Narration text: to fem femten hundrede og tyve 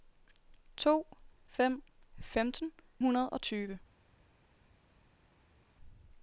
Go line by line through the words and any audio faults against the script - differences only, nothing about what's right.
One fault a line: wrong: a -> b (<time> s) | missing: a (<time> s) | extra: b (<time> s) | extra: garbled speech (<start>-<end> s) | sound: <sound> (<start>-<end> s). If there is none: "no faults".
no faults